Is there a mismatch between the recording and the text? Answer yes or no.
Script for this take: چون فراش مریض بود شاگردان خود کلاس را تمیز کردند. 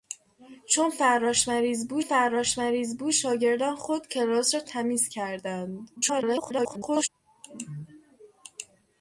yes